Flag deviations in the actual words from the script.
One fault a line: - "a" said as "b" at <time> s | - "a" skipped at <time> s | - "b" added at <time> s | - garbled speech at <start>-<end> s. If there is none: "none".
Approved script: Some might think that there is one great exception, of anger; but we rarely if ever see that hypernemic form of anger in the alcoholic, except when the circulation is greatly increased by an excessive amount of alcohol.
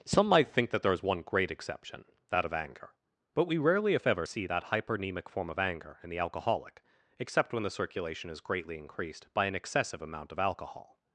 - "that" added at 2.3 s